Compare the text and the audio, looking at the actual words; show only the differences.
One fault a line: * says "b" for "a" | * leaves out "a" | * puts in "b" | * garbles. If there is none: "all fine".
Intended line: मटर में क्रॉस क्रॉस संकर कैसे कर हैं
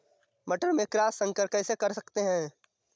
* leaves out "क्रॉस"
* puts in "सकते"